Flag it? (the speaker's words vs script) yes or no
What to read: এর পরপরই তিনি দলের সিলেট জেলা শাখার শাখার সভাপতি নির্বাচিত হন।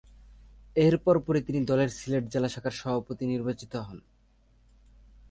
yes